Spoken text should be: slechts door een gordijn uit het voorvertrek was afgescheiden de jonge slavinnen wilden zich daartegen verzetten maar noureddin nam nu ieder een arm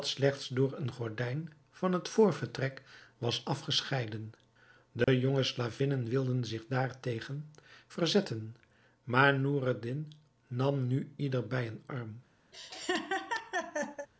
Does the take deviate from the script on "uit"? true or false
true